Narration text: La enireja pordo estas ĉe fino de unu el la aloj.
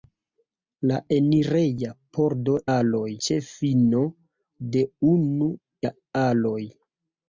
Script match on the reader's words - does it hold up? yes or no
no